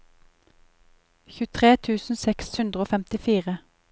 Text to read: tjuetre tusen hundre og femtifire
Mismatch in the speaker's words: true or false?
true